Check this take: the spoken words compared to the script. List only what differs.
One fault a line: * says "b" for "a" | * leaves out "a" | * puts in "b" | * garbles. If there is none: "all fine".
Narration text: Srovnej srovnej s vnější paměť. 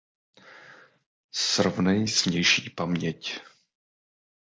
* leaves out "srovnej"